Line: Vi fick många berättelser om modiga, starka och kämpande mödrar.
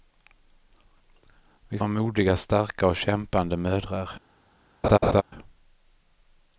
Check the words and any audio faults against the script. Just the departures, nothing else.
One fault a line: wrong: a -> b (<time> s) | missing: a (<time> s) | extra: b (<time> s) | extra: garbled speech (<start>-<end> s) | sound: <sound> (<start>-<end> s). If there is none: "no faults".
missing: fick många berättelser (1.8 s)
sound: laugh (4.8-5.2 s)